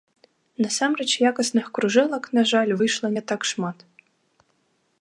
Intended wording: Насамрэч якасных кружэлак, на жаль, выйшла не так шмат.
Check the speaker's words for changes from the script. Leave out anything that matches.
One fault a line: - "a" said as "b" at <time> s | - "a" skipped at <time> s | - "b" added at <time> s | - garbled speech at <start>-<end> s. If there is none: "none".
none